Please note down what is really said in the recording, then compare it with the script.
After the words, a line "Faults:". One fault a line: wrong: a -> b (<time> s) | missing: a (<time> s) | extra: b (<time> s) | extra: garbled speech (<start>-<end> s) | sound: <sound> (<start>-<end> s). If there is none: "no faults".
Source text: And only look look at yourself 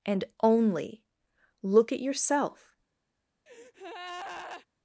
And only look at yourself
Faults:
missing: look (1.9 s)
sound: breath (3.5-4.7 s)